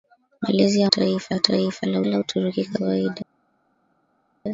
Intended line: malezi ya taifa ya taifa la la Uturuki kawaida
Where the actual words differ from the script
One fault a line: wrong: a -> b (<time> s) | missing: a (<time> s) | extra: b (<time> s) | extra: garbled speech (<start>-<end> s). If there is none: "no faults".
no faults